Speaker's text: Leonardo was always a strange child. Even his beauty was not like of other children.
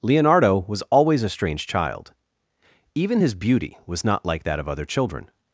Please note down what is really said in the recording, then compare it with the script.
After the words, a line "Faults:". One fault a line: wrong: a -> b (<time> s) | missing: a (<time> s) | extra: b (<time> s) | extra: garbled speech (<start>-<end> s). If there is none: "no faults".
Leonardo was always a strange child. Even his beauty was not like that of other children.
Faults:
extra: that (4.4 s)